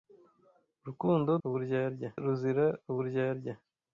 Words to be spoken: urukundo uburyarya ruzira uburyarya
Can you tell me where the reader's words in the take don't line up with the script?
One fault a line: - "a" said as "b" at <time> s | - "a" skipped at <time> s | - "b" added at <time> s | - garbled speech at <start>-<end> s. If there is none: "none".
none